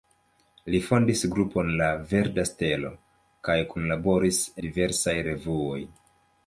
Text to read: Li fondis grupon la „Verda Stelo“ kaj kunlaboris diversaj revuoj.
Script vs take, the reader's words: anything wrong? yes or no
no